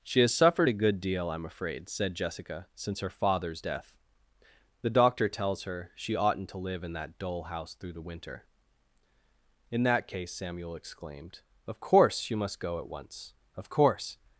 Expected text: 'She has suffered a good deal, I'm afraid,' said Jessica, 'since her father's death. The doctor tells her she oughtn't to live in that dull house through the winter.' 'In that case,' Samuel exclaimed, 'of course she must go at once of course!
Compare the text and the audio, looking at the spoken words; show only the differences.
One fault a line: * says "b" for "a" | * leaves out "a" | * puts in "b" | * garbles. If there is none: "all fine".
* says "you" for "she"